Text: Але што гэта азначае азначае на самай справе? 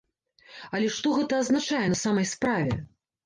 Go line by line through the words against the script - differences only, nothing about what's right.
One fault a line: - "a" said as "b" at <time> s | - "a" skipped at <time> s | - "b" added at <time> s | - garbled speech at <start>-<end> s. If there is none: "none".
- "азначае" skipped at 1.8 s